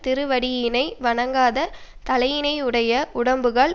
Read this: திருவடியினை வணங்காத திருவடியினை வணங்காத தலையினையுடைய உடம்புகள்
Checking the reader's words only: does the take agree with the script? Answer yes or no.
no